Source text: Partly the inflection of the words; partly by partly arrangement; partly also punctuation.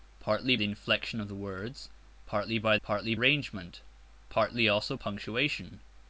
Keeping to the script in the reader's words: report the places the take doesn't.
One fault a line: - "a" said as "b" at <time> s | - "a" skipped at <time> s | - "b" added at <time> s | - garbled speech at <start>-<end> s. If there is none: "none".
none